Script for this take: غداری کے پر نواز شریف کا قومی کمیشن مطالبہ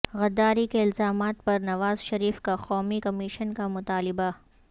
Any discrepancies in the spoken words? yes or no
yes